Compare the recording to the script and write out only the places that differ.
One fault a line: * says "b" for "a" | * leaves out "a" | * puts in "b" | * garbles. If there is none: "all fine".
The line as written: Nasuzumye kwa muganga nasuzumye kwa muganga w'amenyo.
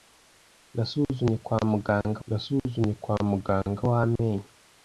all fine